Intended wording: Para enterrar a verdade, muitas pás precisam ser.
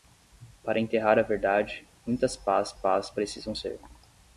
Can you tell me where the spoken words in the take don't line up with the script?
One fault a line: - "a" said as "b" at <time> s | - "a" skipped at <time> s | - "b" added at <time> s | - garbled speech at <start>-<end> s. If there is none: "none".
- "pás" added at 2.7 s